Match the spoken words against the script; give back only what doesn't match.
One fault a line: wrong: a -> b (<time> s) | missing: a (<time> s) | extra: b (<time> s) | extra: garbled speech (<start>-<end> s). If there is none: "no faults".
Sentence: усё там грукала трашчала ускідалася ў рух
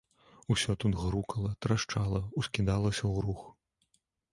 wrong: там -> тут (0.8 s)